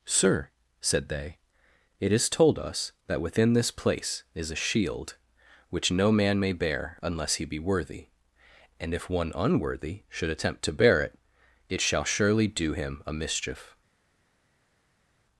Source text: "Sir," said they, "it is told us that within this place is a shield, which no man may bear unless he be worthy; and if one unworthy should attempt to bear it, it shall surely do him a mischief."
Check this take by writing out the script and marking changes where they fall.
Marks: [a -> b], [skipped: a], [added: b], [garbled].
"Sir," said they, "it is told us that within this place is a shield, which no man may bear unless he be worthy; and if one unworthy should attempt to bear it, it shall surely do him a mischief."